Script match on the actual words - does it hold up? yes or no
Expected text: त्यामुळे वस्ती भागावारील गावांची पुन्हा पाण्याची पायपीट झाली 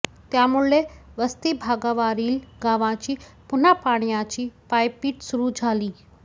no